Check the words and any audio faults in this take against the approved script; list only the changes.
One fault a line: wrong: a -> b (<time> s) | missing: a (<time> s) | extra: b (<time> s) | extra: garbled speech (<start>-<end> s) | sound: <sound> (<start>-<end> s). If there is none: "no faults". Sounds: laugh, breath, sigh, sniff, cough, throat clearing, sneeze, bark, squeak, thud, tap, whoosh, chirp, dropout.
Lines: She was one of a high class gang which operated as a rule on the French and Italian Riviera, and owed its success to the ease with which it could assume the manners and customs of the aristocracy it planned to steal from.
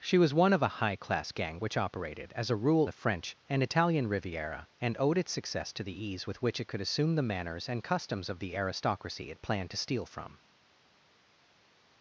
missing: on (2.9 s)